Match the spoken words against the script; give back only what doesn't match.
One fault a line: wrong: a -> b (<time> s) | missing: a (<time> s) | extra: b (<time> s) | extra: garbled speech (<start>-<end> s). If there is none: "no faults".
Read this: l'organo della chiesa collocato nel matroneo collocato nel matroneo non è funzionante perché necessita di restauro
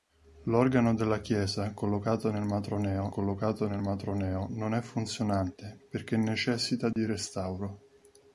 no faults